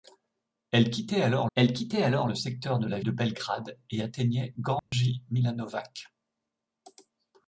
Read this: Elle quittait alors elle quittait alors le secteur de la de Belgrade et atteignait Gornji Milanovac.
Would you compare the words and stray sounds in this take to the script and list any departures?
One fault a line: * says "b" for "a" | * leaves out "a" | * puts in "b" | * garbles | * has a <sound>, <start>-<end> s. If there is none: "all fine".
* has a dropout, 4.8-4.9 s